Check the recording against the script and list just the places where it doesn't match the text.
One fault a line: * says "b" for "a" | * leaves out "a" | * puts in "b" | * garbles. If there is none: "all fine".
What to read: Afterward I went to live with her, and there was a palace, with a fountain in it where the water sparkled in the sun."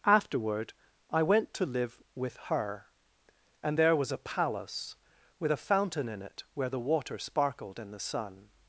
all fine